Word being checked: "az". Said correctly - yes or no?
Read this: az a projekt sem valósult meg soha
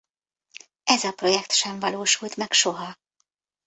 no